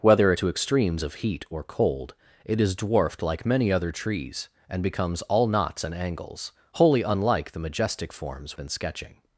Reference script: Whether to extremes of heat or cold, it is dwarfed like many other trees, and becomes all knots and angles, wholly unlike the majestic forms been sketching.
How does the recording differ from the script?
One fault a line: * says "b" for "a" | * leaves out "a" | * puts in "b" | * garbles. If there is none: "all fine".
all fine